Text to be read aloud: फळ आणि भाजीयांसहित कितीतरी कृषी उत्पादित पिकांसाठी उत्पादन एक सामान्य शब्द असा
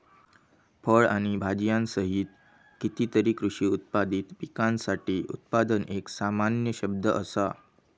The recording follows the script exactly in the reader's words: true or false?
true